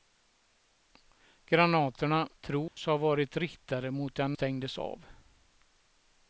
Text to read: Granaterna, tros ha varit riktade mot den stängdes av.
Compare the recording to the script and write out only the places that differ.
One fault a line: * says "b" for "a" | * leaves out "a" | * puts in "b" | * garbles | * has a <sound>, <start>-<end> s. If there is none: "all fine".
* has a dropout, 2.7-2.8 s